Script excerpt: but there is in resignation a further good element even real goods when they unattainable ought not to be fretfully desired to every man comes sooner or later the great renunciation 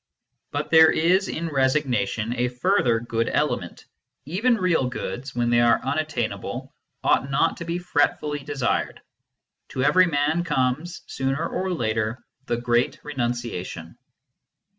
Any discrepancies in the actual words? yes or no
yes